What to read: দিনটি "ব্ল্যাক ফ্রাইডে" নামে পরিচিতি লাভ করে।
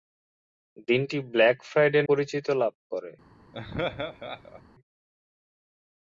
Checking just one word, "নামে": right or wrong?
wrong